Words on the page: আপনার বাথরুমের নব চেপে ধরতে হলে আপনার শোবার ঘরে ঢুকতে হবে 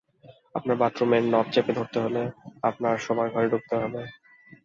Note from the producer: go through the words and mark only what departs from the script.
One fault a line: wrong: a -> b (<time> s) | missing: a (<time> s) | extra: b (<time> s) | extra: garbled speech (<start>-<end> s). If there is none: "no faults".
no faults